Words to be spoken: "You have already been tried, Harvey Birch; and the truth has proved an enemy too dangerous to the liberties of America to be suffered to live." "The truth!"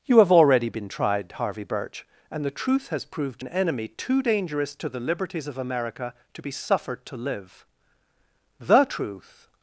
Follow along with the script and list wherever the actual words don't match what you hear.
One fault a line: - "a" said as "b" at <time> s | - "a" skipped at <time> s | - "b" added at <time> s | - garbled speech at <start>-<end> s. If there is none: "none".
none